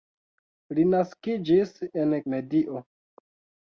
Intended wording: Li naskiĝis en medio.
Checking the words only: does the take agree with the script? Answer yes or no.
yes